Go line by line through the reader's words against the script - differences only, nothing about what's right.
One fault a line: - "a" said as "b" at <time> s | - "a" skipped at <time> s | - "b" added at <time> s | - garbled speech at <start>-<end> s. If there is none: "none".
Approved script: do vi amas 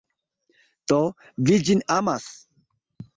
- "ĝin" added at 1.7 s